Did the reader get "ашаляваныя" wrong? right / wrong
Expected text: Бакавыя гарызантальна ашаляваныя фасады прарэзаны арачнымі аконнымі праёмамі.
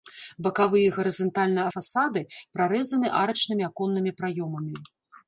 wrong